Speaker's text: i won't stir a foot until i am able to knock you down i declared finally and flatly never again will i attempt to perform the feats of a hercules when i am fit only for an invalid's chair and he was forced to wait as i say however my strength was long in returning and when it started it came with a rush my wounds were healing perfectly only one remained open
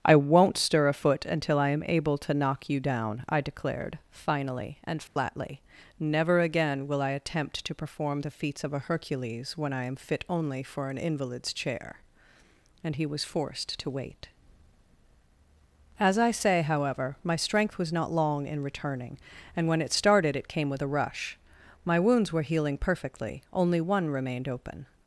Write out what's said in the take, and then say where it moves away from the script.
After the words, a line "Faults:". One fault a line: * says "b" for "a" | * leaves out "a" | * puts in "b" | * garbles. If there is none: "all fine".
i won't stir a foot until i am able to knock you down i declared finally and flatly never again will i attempt to perform the feats of a hercules when i am fit only for an invalid's chair and he was forced to wait as i say however my strength was not long in returning and when it started it came with a rush my wounds were healing perfectly only one remained open
Faults:
* puts in "not"